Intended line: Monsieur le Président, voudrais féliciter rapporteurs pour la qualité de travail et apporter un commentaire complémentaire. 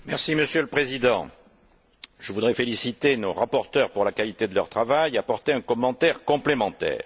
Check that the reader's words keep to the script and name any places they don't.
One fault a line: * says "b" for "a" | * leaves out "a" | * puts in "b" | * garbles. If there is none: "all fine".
* puts in "je"
* puts in "nos"
* puts in "leur"